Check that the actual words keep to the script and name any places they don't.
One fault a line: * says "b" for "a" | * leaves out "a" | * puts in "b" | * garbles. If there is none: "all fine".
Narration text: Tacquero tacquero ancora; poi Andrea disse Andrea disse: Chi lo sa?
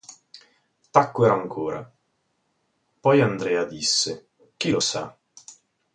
* leaves out "tacquero"
* leaves out "Andrea disse"